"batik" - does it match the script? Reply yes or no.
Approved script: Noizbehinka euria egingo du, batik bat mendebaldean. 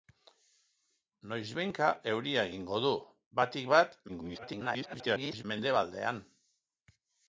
yes